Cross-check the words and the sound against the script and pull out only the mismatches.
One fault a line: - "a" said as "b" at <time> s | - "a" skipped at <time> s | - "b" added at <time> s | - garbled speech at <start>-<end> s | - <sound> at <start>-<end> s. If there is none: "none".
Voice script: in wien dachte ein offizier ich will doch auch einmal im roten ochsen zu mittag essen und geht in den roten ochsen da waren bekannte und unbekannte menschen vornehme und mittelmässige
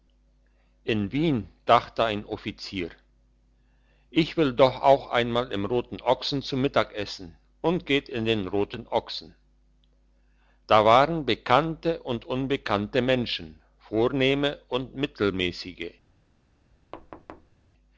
- thud at 16.9-17.6 s